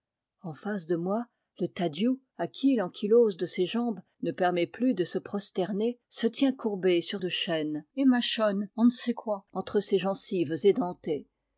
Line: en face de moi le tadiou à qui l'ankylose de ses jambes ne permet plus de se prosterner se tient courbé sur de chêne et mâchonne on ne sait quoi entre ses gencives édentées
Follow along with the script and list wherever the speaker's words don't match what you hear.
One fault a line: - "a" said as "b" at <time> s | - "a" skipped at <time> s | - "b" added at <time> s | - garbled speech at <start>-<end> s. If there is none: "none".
none